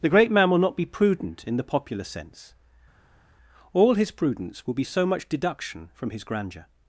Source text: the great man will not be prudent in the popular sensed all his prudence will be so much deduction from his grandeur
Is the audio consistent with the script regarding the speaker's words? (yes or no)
no